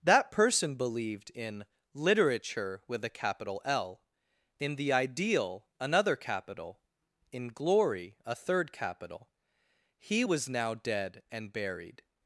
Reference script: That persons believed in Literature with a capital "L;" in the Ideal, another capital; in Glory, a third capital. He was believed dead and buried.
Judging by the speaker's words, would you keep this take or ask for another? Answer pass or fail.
fail